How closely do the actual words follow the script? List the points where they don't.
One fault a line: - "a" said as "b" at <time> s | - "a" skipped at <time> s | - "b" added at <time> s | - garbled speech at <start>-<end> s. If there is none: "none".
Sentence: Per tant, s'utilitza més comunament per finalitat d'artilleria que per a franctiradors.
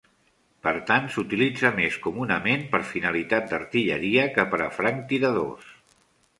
none